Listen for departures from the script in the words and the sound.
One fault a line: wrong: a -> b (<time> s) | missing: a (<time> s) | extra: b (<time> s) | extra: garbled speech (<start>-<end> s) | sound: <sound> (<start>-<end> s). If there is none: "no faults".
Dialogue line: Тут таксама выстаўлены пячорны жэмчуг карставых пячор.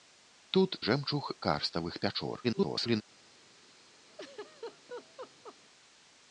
missing: таксама выстаўлены пячорны (0.8 s)
extra: garbled speech (2.4-3.0 s)
sound: laugh (4.1-5.6 s)